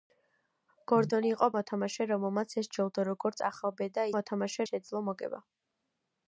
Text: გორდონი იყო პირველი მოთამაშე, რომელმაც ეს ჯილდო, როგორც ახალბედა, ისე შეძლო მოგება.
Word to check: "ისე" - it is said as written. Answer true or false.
false